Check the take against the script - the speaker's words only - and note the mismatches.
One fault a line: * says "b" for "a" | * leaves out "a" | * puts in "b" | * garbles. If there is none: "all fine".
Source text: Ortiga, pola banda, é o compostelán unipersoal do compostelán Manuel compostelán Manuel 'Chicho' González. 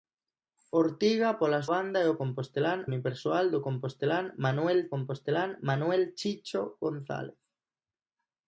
all fine